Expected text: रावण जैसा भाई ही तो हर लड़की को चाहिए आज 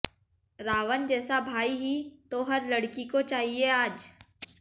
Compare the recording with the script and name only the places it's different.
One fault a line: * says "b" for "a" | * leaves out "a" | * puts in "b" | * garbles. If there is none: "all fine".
all fine